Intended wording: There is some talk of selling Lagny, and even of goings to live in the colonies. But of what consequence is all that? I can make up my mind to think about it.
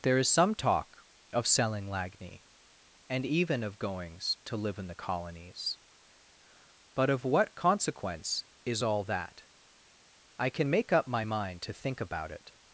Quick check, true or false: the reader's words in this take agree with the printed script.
true